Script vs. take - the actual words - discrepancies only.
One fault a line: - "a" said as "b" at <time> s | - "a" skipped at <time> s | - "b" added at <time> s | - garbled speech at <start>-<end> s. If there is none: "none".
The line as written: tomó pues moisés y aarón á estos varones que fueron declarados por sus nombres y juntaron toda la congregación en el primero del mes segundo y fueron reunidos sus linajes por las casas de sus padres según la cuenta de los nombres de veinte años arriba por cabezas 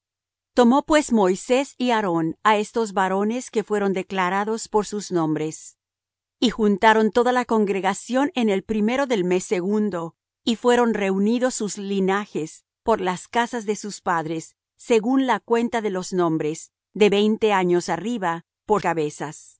none